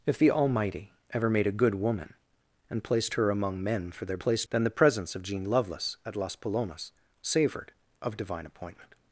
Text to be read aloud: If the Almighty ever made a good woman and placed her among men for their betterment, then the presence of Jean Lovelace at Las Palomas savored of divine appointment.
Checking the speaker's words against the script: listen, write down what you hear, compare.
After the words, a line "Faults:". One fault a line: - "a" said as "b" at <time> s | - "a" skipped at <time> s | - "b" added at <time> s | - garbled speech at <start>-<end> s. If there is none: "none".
If the Almighty ever made a good woman and placed her among men for their placed, then the presence of Jean Lovelace at Las Palomas savored of divine appointment.
Faults:
- "betterment" said as "placed" at 4.2 s